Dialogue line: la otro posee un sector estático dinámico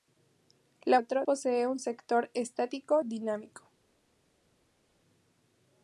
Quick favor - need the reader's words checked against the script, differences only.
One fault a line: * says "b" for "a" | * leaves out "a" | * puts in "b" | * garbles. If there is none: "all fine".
all fine